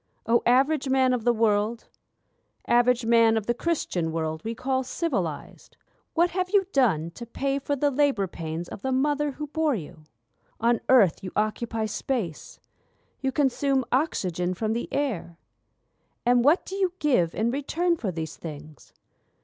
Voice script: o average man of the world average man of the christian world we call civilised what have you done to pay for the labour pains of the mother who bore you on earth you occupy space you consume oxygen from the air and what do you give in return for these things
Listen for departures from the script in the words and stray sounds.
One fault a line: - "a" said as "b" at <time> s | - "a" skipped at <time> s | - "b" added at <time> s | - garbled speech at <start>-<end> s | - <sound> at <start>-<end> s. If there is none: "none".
none